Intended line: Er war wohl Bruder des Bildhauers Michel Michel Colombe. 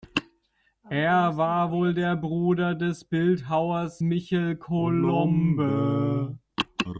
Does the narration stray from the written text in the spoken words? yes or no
yes